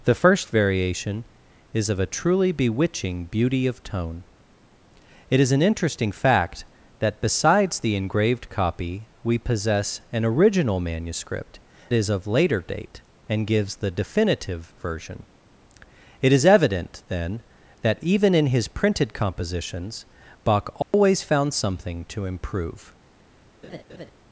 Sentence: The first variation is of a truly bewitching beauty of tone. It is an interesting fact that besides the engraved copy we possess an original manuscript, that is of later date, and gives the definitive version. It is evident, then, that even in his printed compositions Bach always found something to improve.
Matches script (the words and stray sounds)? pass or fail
fail